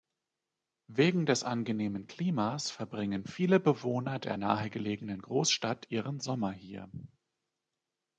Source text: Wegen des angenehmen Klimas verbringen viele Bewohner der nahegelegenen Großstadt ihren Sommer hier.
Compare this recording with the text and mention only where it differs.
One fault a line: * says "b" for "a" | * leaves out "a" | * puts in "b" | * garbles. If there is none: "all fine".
all fine